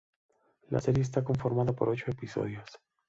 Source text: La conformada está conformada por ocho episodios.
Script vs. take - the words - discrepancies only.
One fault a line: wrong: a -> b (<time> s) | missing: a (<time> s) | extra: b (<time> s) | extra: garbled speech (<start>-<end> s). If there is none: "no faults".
wrong: conformada -> serie (0.8 s)